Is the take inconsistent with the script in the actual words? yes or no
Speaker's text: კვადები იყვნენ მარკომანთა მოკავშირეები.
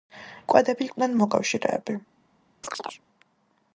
yes